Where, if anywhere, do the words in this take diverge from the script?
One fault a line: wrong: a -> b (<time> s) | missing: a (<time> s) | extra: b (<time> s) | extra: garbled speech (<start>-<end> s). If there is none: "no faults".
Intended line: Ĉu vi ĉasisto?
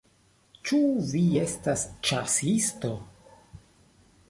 extra: estas (1.4 s)